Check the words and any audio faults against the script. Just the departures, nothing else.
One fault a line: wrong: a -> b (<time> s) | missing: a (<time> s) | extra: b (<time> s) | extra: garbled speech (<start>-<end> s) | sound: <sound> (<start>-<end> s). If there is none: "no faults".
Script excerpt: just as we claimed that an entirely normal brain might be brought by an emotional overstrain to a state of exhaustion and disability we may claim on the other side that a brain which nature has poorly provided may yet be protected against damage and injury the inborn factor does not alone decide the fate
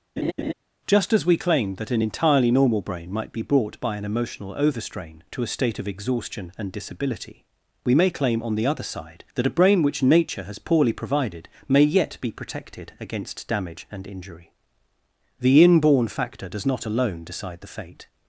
sound: laugh (0.2-0.5 s)